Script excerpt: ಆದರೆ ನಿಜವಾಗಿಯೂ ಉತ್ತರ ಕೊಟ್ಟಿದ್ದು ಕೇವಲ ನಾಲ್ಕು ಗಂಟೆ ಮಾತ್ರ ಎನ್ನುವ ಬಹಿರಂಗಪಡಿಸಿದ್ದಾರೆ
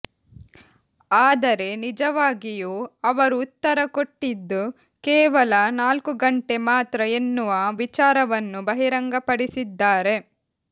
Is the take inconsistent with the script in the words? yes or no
yes